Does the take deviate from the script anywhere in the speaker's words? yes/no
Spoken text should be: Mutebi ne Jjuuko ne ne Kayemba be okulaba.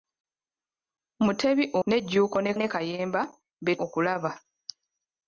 no